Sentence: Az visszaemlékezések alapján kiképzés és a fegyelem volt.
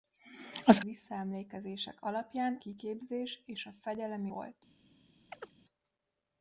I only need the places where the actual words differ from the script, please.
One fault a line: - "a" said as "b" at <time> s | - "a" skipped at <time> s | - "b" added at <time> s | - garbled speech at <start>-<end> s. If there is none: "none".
none